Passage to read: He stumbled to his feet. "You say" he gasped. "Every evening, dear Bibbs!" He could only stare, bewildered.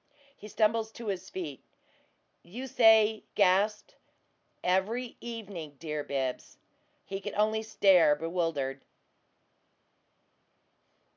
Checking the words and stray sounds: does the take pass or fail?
fail